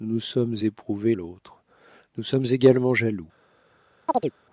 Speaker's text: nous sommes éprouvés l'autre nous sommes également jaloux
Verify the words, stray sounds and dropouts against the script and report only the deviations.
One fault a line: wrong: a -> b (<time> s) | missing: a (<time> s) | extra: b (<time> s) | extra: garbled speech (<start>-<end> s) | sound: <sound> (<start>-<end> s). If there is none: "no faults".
sound: chirp (4.1-4.3 s)